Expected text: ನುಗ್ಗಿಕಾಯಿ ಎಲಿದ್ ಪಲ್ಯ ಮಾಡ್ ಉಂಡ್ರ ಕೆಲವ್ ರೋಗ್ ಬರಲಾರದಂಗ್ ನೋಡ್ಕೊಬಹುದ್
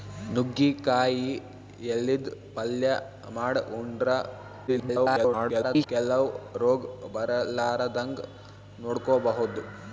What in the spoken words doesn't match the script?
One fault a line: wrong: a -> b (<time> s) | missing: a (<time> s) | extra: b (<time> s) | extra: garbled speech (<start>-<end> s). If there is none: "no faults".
extra: garbled speech (4.7-5.9 s)